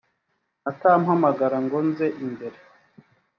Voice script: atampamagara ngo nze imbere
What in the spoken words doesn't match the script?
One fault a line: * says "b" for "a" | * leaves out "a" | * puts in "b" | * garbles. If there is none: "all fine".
all fine